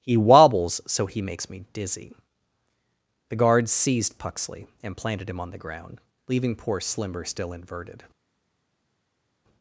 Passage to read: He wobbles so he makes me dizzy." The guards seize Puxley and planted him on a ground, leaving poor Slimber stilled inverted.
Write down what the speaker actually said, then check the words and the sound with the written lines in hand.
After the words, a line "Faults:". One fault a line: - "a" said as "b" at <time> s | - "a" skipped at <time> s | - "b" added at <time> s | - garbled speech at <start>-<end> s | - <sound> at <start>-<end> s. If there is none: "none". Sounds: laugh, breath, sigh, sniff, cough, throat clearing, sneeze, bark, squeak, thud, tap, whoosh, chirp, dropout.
He wobbles so he makes me dizzy." The guards seized Puxley and planted him on the ground, leaving poor Slimber still inverted.
Faults:
- "seize" said as "seized" at 3.7 s
- "a" said as "the" at 5.5 s
- "stilled" said as "still" at 7.3 s